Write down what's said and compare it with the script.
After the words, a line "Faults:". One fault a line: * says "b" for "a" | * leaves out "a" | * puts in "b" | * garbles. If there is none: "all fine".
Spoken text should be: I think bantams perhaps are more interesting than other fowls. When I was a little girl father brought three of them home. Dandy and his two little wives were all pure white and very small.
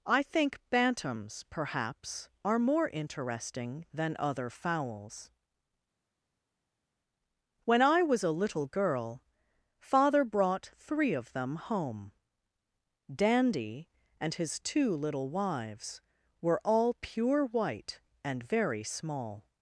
I think bantams perhaps are more interesting than other fowls. When I was a little girl father brought three of them home. Dandy and his two little wives were all pure white and very small.
Faults:
all fine